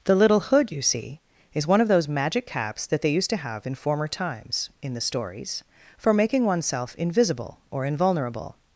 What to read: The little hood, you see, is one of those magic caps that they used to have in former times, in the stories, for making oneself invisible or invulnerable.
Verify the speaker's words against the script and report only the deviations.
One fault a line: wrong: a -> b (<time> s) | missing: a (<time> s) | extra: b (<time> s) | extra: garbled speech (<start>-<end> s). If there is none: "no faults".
no faults